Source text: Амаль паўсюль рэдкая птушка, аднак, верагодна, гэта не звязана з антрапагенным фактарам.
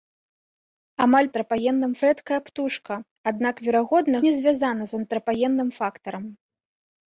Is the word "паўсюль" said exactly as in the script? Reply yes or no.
no